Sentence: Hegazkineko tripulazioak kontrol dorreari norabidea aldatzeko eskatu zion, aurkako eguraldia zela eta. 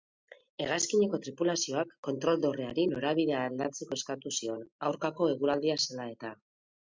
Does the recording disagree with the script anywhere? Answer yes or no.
no